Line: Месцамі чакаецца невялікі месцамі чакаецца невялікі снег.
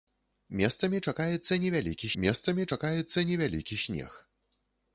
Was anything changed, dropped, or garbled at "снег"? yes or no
no